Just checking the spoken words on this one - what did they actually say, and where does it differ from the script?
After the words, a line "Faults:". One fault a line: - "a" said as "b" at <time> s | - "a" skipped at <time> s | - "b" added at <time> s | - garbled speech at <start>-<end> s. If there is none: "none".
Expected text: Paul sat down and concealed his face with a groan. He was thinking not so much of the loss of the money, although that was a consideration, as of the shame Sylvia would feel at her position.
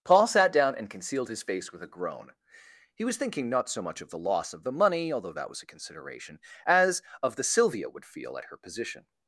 Paul sat down and concealed his face with a groan. He was thinking not so much of the loss of the money, although that was a consideration, as of the Sylvia would feel at her position.
Faults:
- "shame" skipped at 7.4 s